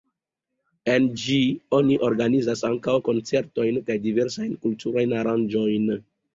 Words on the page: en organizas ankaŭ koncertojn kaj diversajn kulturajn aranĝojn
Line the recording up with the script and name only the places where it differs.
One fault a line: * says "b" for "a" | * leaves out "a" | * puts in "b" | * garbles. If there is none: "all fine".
* puts in "ĝi oni"